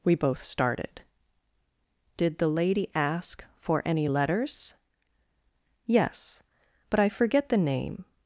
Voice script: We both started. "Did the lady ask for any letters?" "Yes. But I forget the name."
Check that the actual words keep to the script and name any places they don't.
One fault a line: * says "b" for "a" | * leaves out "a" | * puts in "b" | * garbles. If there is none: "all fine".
all fine